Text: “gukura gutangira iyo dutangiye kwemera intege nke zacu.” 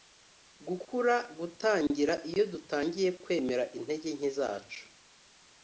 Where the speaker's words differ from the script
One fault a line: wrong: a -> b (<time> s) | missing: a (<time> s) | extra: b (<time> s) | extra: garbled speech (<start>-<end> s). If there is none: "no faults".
no faults